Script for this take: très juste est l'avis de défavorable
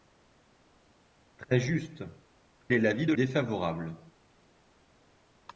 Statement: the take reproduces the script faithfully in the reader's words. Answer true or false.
true